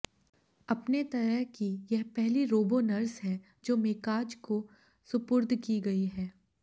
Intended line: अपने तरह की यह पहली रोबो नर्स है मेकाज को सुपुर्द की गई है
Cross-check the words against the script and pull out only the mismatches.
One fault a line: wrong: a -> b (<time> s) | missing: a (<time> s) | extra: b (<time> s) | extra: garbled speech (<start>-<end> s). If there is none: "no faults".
extra: जो (3.6 s)